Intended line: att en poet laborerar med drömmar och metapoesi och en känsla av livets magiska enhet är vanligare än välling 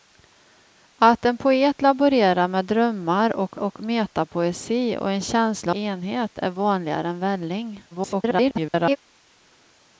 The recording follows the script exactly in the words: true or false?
false